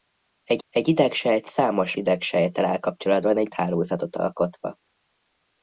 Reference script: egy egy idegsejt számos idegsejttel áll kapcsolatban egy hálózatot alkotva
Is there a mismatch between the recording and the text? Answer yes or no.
no